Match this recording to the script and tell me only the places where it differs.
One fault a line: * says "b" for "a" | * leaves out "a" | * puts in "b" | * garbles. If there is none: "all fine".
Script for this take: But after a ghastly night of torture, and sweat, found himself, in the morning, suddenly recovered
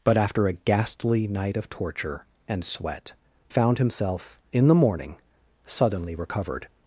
all fine